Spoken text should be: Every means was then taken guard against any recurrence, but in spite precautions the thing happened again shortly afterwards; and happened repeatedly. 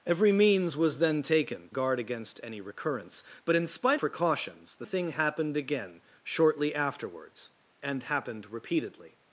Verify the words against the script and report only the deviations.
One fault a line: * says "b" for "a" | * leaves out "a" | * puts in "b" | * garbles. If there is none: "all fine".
all fine